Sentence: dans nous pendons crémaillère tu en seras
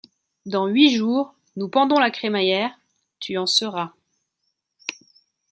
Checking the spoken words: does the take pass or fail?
fail